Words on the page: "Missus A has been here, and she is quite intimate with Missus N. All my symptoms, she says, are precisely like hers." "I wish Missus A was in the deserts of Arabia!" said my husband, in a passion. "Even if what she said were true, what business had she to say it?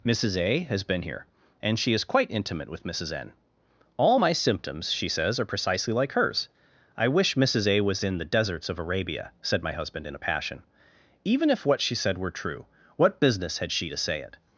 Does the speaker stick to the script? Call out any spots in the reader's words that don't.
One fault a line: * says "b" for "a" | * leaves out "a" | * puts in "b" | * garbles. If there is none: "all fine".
all fine